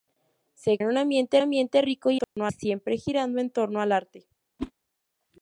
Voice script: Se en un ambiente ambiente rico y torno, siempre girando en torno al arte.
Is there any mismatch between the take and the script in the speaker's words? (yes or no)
no